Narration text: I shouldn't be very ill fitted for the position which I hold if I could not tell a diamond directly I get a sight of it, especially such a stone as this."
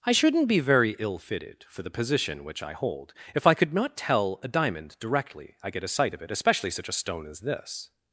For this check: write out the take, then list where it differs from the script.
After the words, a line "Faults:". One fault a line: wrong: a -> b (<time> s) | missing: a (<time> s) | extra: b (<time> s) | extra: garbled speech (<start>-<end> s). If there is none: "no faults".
I shouldn't be very ill fitted for the position which I hold if I could not tell a diamond directly I get a sight of it, especially such a stone as this."
Faults:
no faults